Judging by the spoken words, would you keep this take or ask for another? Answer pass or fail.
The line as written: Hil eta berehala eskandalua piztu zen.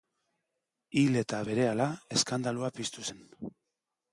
pass